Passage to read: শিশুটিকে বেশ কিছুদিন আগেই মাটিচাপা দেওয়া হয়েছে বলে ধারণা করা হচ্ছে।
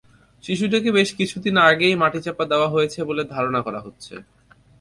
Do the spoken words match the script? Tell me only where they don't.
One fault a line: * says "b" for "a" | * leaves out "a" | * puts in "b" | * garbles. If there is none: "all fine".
all fine